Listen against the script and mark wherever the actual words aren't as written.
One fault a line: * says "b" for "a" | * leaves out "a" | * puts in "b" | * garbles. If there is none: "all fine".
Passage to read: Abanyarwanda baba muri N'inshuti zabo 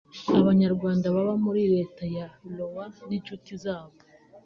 * puts in "Leta ya Iowa"